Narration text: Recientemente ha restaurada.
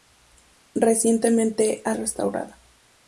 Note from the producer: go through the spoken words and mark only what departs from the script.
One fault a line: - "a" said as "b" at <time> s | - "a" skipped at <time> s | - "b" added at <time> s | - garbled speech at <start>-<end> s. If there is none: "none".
none